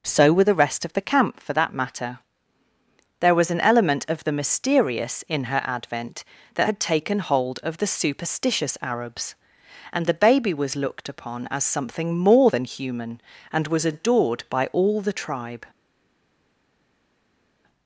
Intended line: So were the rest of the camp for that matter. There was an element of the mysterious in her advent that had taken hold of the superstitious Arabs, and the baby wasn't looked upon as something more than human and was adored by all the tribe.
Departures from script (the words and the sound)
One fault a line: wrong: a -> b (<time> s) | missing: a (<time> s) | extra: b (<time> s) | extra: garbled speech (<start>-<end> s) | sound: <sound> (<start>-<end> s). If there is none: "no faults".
wrong: wasn't -> was (10.5 s)